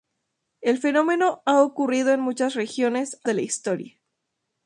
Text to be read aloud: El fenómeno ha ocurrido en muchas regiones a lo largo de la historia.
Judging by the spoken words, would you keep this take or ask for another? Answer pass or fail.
fail